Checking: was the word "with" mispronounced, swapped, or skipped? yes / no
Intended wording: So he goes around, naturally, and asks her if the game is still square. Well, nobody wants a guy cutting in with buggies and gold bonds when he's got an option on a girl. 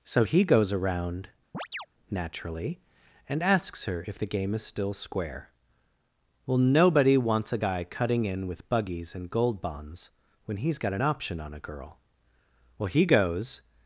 no